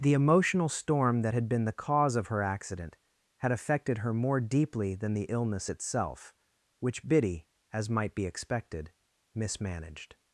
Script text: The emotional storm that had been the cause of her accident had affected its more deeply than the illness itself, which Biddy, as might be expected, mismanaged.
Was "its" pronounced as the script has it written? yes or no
no